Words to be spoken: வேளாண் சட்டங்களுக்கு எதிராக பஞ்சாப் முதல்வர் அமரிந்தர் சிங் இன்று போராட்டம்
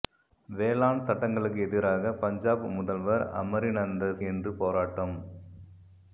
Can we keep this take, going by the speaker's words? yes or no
no